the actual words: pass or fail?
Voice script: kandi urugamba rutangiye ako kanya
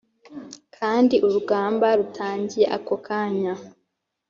pass